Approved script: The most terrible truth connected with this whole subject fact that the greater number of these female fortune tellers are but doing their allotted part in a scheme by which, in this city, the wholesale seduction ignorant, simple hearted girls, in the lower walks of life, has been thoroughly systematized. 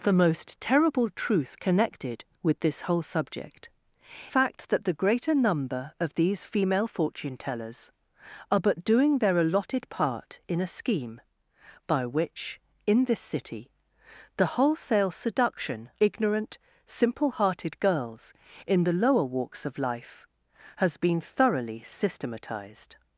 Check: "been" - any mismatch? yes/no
no